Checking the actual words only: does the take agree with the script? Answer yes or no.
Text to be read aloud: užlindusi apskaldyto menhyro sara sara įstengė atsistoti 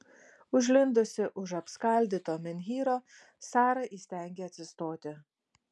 no